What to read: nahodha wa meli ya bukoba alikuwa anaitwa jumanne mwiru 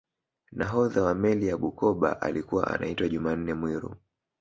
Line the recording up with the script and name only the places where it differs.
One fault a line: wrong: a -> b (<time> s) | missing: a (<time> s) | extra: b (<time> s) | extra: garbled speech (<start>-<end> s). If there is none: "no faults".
no faults